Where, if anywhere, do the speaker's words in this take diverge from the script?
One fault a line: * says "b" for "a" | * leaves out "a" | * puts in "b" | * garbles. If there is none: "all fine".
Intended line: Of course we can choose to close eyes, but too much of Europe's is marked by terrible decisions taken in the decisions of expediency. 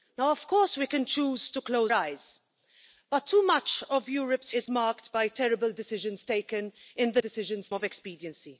all fine